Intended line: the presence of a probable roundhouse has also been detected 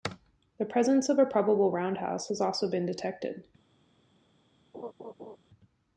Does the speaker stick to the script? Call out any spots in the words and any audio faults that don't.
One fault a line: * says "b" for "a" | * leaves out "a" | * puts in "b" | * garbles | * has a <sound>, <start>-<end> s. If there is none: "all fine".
* has a laugh, 4.7-5.4 s